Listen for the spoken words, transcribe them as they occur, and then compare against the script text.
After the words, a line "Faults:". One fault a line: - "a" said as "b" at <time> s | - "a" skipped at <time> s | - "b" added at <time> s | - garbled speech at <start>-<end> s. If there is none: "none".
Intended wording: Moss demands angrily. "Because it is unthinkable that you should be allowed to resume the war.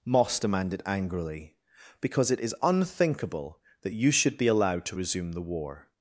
Moss demanded angrily. "Because it is unthinkable that you should be allowed to resume the war.
Faults:
- "demands" said as "demanded" at 0.4 s